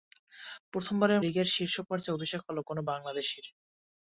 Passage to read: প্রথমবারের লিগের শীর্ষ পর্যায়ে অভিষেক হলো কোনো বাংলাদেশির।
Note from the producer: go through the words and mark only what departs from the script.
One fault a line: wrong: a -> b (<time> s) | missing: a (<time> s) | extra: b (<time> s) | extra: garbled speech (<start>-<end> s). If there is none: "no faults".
no faults